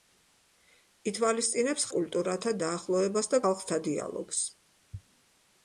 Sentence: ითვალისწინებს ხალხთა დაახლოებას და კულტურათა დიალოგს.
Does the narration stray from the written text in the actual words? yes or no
yes